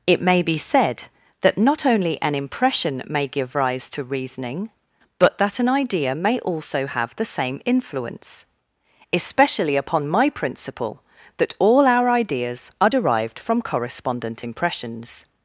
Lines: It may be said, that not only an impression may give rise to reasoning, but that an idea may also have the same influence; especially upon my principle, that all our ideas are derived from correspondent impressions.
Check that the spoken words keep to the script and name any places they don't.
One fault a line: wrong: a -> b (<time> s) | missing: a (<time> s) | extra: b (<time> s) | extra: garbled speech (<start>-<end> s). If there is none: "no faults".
no faults